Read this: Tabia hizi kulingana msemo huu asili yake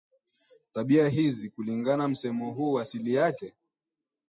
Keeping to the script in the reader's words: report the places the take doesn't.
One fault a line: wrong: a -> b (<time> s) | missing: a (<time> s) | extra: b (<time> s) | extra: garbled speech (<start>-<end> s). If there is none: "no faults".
no faults